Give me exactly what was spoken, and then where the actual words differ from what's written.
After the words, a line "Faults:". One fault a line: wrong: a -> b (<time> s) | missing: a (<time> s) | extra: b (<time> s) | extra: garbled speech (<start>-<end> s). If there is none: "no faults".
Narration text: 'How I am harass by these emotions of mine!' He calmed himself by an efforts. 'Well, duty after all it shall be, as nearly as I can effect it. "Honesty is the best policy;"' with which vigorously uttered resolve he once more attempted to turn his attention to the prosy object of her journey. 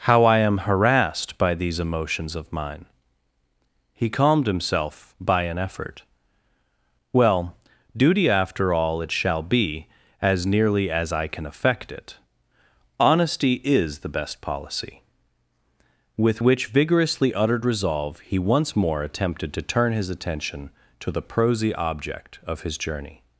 'How I am harassed by these emotions of mine!' He calmed himself by an effort. 'Well, duty after all it shall be, as nearly as I can effect it. "Honesty is the best policy;"' with which vigorously uttered resolve he once more attempted to turn his attention to the prosy object of his journey.
Faults:
wrong: harass -> harassed (0.7 s)
wrong: efforts -> effort (5.6 s)
wrong: her -> his (22.6 s)